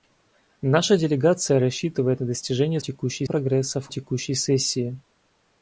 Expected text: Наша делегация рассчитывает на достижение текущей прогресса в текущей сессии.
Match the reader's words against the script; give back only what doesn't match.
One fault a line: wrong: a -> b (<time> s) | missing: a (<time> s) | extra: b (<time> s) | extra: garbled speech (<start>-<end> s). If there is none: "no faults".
no faults